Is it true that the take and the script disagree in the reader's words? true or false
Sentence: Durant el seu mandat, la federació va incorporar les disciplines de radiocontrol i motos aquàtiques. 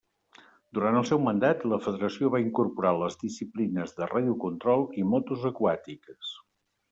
false